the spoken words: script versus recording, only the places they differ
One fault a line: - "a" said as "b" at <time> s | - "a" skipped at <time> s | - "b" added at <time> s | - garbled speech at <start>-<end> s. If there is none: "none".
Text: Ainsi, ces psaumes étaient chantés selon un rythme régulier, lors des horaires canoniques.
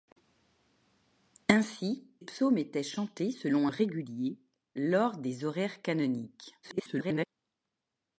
- "ces" skipped at 2.1 s
- "un rythme" skipped at 3.7 s
- garbled speech at 6.6-7.3 s